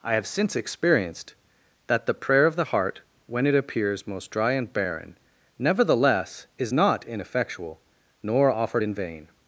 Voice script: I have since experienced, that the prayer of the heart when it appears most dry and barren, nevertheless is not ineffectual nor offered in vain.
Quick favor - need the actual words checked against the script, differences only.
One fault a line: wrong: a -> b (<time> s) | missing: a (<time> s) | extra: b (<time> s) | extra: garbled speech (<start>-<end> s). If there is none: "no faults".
no faults